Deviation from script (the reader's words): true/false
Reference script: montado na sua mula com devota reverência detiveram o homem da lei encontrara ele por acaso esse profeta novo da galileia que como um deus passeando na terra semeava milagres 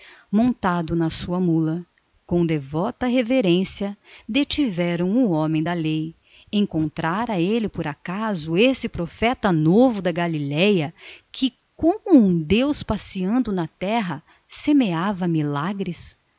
false